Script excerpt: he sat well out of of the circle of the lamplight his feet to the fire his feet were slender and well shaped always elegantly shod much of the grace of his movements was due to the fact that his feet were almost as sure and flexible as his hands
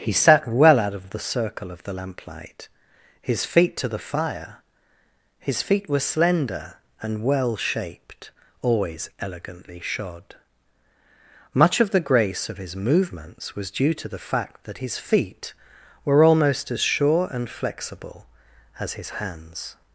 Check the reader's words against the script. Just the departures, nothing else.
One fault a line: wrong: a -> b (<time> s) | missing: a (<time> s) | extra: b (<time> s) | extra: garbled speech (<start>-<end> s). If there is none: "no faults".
no faults